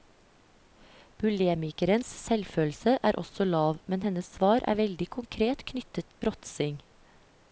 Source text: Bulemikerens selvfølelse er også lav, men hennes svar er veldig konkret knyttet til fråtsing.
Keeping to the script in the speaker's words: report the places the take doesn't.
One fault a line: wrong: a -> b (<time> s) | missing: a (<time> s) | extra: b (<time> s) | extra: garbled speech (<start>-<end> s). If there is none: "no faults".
missing: til (6.2 s)